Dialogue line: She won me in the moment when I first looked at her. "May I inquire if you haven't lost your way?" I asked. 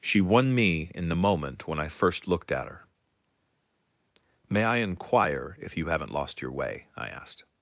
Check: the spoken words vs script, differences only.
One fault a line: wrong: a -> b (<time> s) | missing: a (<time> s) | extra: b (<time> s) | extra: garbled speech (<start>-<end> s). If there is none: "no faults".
no faults